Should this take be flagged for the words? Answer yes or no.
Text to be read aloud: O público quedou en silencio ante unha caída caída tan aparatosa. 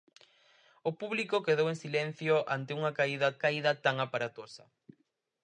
no